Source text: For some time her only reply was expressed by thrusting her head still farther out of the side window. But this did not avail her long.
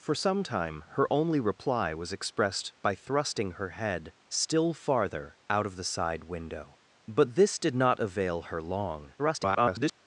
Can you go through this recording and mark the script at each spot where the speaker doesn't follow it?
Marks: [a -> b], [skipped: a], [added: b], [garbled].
For some time her only reply was expressed by thrusting her head still farther out of the side window. But this did not avail her long. [garbled]